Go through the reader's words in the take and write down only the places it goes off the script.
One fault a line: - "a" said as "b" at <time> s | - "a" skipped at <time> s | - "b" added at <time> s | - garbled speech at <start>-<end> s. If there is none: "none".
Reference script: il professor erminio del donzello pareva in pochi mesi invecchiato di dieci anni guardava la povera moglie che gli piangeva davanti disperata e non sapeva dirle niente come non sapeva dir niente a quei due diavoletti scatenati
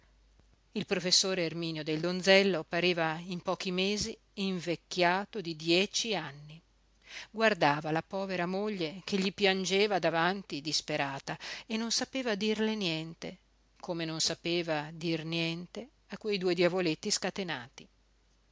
none